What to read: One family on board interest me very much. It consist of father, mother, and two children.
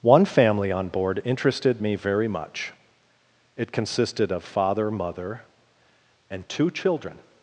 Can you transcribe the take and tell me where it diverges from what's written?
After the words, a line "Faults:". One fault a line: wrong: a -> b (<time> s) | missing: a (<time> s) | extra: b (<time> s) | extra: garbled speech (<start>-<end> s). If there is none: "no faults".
One family on board interested me very much. It consisted of father, mother, and two children.
Faults:
wrong: interest -> interested (1.2 s)
wrong: consist -> consisted (3.7 s)